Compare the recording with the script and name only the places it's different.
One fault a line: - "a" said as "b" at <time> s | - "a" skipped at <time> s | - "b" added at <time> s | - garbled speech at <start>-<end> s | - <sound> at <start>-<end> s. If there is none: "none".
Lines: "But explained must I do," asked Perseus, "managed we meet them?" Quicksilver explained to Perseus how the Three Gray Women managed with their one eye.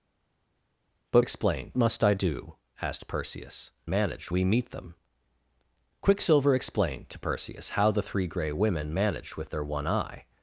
none